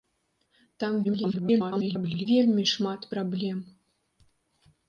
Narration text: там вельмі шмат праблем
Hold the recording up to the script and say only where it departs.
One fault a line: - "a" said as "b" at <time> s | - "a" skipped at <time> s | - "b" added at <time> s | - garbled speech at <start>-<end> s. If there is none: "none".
- garbled speech at 1.0-2.3 s